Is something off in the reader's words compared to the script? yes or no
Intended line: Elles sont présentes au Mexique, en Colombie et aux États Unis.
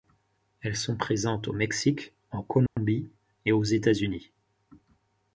no